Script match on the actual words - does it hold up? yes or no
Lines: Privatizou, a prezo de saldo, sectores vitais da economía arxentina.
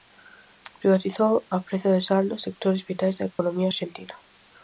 yes